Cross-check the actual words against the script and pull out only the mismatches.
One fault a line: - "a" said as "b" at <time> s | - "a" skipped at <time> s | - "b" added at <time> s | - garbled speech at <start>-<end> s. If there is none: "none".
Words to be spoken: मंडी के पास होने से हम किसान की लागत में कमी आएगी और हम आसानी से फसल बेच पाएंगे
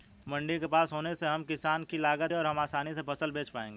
- "में कमी आएगी" skipped at 2.3 s